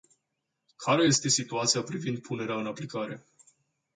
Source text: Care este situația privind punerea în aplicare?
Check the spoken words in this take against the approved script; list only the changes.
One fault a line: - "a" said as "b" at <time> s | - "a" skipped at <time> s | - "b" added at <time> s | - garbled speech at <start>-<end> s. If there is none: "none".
none